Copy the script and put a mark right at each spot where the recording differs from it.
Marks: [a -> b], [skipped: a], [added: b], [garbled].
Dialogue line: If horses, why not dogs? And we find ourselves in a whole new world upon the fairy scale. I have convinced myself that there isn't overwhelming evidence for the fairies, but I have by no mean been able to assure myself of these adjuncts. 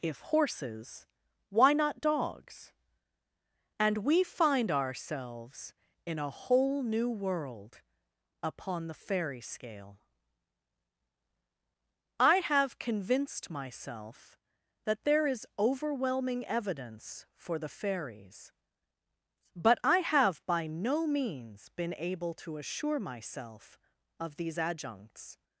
If horses, why not dogs? And we find ourselves in a whole new world upon the fairy scale. I have convinced myself that there [isn't -> is] overwhelming evidence for the fairies, but I have by no [mean -> means] been able to assure myself of these adjuncts.